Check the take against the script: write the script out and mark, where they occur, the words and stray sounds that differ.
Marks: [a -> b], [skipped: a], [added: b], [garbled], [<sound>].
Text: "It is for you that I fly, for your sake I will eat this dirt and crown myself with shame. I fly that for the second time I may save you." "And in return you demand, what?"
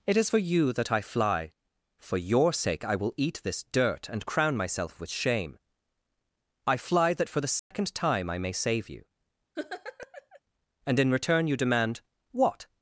"It is for you that I fly, for your sake I will eat this dirt and crown myself with shame. I fly that for the second [dropout] time I may save you." [laugh] "And in return you demand, what?"